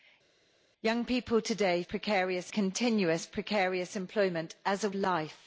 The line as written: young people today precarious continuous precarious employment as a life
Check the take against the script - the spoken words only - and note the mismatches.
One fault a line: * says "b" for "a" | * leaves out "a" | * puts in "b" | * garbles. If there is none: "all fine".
all fine